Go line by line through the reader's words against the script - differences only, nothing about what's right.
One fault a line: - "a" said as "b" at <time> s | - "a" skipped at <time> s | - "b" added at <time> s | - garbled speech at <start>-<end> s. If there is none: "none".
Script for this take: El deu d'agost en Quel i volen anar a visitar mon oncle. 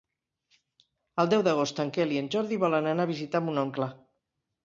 - "en Jordi" added at 2.2 s